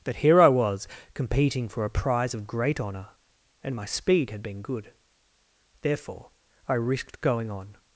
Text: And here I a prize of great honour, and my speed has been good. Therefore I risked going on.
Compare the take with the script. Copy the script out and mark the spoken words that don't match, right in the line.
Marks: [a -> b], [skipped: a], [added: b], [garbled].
[And -> But] here I [added: was competing for] a prize of great honour, and my speed [has -> had] been good. Therefore I risked going on.